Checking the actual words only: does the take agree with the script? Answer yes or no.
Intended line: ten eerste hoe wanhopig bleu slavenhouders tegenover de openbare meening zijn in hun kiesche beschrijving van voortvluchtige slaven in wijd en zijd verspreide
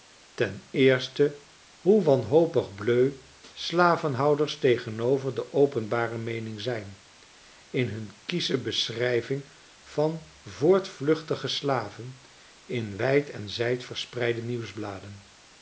yes